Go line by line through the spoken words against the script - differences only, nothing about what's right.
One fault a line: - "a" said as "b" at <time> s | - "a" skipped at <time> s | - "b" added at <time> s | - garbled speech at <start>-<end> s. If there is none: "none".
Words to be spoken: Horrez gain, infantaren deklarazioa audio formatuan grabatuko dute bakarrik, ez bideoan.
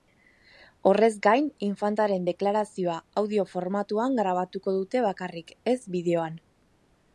none